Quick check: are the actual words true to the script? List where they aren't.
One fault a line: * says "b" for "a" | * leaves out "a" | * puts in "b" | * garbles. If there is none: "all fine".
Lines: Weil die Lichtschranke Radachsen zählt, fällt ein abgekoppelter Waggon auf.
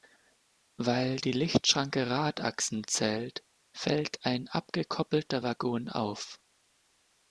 all fine